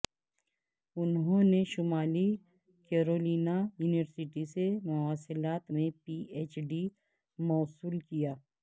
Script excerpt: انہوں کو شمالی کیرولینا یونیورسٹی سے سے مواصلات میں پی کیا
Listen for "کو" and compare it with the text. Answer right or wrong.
wrong